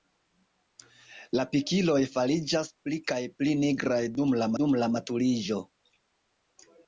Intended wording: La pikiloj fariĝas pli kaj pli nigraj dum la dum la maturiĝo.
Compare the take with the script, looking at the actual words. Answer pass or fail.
pass